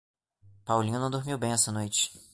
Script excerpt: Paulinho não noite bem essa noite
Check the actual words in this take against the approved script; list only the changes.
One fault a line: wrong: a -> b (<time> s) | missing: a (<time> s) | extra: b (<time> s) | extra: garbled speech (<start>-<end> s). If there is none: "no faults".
wrong: noite -> dormiu (1.1 s)